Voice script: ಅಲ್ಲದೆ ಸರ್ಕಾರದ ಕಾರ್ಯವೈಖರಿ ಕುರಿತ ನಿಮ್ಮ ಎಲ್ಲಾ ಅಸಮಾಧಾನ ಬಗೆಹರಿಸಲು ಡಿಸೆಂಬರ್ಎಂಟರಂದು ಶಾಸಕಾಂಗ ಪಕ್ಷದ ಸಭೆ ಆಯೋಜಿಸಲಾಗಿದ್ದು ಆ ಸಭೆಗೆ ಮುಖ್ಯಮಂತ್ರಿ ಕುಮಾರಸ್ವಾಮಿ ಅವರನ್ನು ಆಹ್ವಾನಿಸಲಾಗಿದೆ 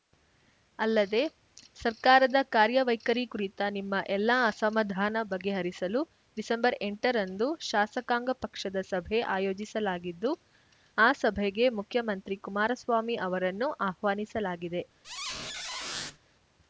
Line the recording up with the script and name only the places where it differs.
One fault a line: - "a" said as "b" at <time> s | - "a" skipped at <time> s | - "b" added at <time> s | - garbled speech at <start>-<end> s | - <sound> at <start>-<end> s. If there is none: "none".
- squeak at 15.0-16.2 s